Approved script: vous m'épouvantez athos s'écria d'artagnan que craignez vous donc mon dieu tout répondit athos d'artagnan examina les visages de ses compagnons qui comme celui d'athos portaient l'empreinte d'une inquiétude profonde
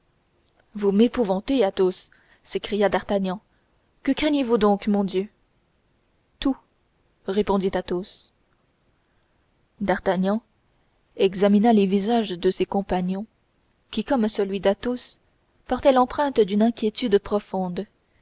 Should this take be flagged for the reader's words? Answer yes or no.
no